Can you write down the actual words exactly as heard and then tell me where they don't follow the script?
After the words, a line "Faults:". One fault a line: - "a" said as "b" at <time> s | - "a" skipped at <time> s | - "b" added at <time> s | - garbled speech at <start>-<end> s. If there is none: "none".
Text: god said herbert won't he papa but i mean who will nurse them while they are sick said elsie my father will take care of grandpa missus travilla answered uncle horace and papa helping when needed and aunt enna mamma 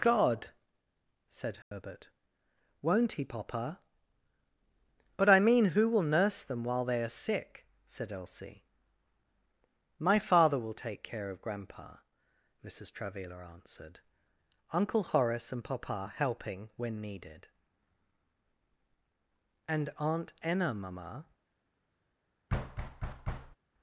god said herbert won't he papa but i mean who will nurse them while they are sick said elsie my father will take care of grandpa missus travilla answered uncle horace and papa helping when needed and aunt enna mamma
Faults:
none